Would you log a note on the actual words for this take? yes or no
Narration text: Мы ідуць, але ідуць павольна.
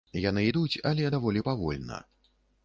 yes